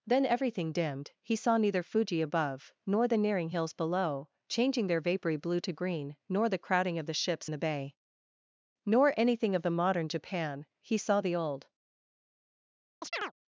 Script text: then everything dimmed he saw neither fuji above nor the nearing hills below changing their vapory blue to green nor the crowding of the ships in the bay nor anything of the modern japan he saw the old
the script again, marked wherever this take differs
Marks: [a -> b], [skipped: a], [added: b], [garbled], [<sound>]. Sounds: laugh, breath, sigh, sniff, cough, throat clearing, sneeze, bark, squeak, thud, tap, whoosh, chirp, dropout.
then everything dimmed he saw neither fuji above nor the nearing hills below changing their vapory blue to green nor the crowding of the ships [skipped: in] the bay nor anything of the modern japan he saw the old [chirp]